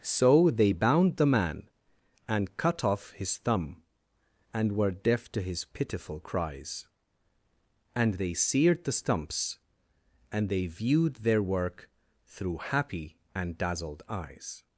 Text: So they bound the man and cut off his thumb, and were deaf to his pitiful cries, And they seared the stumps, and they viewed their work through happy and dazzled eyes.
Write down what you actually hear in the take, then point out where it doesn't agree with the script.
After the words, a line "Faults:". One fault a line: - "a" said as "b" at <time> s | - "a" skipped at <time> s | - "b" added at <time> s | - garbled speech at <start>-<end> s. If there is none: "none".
So they bound the man and cut off his thumb, and were deaf to his pitiful cries, And they seared the stumps, and they viewed their work through happy and dazzled eyes.
Faults:
none